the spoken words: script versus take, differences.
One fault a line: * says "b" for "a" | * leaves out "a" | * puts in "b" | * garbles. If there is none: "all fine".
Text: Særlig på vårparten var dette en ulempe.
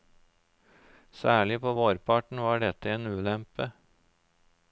all fine